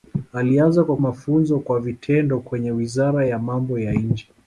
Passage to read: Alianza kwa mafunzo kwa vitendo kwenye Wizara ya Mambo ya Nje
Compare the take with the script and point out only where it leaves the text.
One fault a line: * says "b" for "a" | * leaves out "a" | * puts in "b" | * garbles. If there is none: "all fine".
all fine